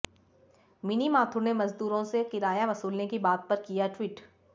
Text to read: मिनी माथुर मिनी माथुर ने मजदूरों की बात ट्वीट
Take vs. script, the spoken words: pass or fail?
fail